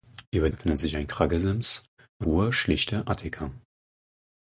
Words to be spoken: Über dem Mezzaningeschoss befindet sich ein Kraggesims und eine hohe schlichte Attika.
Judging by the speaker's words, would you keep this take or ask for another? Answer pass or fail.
fail